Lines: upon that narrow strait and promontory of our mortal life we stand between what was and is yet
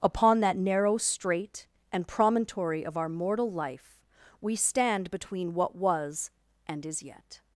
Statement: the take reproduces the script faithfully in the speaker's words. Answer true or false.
true